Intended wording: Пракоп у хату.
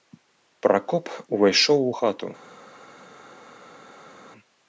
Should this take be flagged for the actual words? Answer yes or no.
yes